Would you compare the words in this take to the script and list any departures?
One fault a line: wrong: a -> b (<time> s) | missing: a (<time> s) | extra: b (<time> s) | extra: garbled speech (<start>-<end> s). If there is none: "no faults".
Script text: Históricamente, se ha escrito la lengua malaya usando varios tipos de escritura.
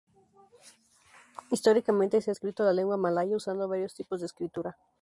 no faults